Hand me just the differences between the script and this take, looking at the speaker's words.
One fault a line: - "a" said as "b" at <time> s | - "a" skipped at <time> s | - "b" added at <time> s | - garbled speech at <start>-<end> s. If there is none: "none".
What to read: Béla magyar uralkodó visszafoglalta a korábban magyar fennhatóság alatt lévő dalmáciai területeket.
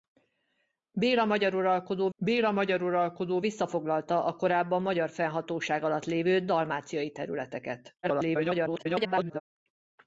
- "béla magyar uralkodó" added at 2.2 s
- garbled speech at 8.0-9.4 s